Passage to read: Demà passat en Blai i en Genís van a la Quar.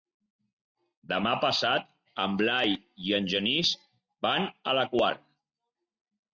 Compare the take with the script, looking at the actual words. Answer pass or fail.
pass